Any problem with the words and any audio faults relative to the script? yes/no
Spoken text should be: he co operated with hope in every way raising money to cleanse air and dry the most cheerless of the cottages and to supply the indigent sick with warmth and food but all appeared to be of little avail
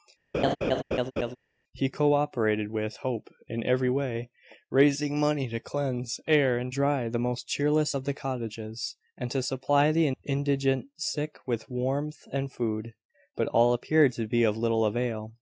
yes